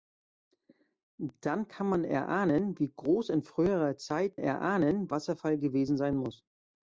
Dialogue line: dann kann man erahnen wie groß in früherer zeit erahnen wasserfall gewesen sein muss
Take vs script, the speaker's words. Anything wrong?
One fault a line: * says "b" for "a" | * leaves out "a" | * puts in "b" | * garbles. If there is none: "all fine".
all fine